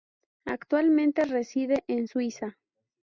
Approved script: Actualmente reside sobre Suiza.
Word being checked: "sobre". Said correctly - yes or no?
no